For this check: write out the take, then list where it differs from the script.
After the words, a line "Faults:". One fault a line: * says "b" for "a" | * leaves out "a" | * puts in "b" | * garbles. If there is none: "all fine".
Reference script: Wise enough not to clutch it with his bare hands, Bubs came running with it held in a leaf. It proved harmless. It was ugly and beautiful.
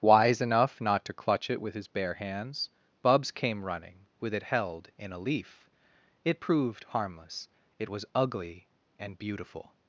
Wise enough not to clutch it with his bare hands, Bubs came running with it held in a leaf. It proved harmless. It was ugly and beautiful.
Faults:
all fine